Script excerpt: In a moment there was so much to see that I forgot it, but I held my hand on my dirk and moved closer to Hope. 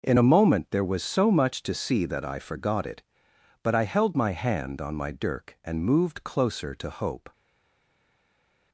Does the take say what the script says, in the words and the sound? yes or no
yes